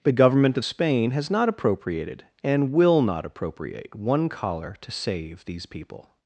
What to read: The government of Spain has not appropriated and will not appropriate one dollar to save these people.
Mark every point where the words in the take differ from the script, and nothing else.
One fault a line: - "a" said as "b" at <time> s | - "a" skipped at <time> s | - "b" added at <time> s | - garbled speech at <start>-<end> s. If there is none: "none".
- "dollar" said as "collar" at 4.3 s